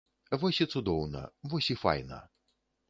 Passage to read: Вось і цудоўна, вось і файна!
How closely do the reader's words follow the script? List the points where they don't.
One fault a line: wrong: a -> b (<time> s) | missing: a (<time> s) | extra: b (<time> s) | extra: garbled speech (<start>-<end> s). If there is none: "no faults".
no faults